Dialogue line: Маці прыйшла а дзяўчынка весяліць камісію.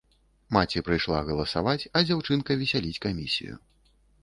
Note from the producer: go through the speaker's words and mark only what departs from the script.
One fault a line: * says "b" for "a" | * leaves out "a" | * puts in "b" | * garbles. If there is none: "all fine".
* puts in "галасаваць"